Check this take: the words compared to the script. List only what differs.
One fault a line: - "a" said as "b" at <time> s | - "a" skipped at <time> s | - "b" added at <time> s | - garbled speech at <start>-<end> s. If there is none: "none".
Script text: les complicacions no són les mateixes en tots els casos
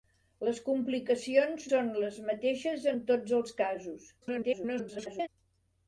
- "no" skipped at 1.7 s
- garbled speech at 4.2-5.3 s